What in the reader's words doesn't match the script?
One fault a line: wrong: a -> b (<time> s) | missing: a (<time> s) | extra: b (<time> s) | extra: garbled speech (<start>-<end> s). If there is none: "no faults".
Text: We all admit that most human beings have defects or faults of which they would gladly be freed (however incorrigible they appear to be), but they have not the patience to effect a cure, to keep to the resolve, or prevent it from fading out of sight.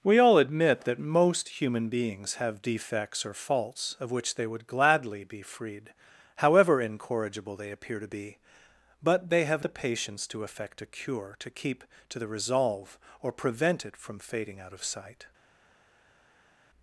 missing: not (9.6 s)